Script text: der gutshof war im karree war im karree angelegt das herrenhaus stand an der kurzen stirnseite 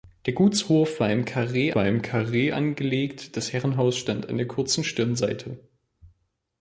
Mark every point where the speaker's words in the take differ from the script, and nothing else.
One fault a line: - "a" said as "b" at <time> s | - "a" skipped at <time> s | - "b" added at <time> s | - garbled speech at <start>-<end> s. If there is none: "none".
none